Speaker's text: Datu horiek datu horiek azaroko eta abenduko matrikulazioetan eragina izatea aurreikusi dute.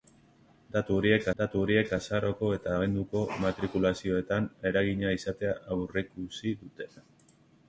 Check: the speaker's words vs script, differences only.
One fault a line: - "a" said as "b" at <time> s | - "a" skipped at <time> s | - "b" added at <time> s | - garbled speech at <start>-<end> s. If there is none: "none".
none